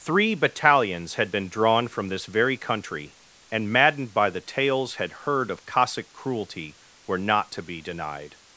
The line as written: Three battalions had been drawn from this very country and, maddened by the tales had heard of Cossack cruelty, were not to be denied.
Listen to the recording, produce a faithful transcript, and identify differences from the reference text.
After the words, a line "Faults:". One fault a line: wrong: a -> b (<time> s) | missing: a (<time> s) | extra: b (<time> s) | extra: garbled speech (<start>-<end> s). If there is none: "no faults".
Three battalions had been drawn from this very country and, maddened by the tales had heard of Cossack cruelty, were not to be denied.
Faults:
no faults